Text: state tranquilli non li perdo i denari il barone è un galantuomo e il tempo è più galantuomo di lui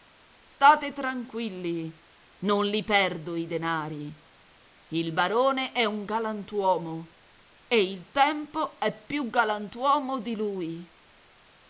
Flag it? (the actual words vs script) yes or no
no